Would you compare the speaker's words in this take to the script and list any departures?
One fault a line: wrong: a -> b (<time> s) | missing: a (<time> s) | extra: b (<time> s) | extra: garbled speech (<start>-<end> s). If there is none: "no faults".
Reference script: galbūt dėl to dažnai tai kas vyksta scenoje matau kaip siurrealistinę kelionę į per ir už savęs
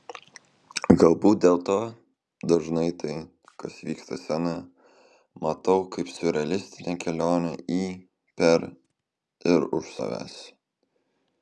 no faults